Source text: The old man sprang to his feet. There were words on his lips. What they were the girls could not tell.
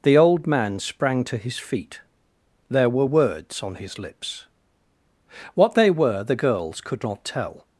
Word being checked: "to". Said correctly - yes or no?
yes